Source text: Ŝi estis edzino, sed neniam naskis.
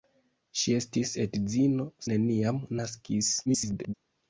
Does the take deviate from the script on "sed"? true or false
true